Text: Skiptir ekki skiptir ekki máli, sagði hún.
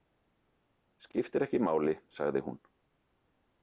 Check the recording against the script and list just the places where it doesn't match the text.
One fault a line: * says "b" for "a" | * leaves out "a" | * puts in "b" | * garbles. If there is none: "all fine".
* leaves out "skiptir ekki"